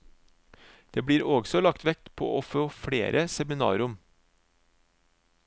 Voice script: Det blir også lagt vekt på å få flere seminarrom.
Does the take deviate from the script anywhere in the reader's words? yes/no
no